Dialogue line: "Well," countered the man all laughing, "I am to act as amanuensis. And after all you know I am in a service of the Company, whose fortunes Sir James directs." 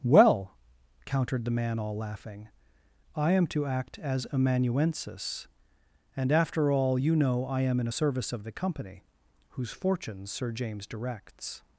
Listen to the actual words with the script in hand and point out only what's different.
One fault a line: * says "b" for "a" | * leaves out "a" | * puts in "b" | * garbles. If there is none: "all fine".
all fine